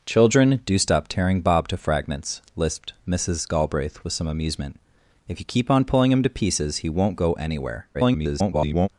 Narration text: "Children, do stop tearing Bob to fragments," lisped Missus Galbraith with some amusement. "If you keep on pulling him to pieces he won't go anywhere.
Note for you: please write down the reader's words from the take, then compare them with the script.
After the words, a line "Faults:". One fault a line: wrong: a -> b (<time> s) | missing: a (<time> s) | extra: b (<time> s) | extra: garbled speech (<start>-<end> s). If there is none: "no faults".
"Children, do stop tearing Bob to fragments," lisped Missus Galbraith with some amusement. "If you keep on pulling him to pieces he won't go anywhere. [garbled]
Faults:
extra: garbled speech (7.9-8.9 s)